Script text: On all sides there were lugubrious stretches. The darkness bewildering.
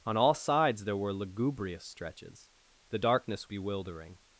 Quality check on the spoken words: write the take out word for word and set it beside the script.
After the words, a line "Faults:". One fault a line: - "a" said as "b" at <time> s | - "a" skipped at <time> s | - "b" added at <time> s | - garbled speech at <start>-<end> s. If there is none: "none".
On all sides there were lugubrious stretches. The darkness bewildering.
Faults:
none